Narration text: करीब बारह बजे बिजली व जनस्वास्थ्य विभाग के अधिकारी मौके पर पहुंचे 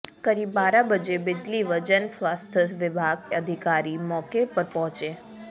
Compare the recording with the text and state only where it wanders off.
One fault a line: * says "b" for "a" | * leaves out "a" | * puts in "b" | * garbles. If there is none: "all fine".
* leaves out "के"